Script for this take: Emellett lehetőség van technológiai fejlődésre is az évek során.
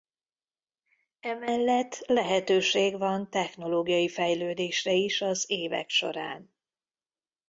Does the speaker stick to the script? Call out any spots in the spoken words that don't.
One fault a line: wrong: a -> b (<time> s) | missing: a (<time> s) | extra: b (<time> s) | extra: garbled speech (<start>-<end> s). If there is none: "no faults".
no faults